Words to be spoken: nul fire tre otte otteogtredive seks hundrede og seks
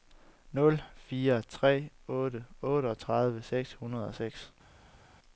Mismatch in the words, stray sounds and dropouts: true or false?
false